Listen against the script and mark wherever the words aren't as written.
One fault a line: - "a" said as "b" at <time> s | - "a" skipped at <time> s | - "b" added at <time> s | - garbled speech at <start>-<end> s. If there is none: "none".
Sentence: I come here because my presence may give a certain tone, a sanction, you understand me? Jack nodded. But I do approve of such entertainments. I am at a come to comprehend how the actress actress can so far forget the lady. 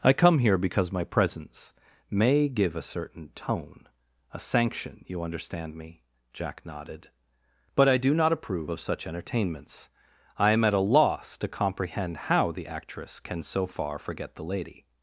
- "not" added at 8.2 s
- "come" said as "loss" at 10.8 s
- "actress" skipped at 13.2 s